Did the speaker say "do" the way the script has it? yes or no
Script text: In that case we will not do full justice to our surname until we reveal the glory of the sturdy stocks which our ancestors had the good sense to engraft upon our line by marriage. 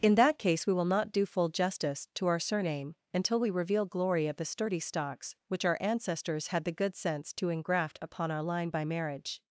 yes